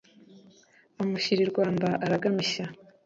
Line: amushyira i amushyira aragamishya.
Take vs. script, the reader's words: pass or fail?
fail